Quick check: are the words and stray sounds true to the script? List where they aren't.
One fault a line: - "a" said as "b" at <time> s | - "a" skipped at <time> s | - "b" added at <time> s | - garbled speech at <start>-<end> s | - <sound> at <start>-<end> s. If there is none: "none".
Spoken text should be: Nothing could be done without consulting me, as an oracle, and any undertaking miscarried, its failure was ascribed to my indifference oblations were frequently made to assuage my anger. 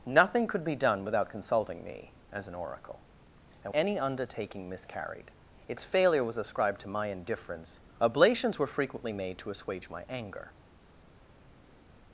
none